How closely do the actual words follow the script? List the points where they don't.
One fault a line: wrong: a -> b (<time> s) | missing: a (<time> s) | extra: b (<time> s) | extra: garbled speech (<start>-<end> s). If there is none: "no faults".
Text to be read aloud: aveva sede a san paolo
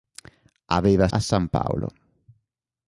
missing: sede (1.1 s)